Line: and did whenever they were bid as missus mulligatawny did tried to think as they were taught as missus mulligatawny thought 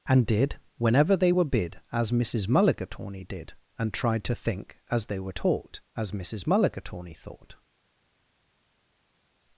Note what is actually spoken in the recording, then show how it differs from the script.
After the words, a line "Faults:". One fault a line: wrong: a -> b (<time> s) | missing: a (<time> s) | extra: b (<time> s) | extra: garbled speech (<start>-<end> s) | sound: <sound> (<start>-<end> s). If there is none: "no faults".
and did whenever they were bid as missus mulligatawny did and tried to think as they were taught as missus mulligatawny thought
Faults:
extra: and (3.8 s)